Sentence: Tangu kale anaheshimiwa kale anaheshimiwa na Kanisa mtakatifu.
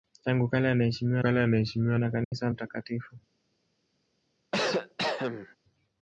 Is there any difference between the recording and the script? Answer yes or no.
no